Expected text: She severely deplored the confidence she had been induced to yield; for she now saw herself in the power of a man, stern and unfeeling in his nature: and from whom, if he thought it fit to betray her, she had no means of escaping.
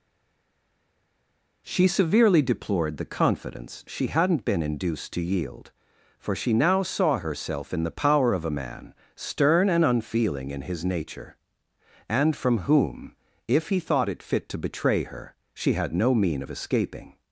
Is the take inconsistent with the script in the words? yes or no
yes